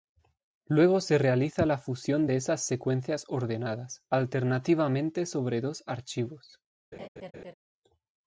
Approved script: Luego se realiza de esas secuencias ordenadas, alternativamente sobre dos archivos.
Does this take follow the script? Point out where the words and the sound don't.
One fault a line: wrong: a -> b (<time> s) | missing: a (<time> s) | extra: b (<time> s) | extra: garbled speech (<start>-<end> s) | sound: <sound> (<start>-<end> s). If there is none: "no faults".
extra: la fusión (1.7 s)
sound: laugh (6.9-7.5 s)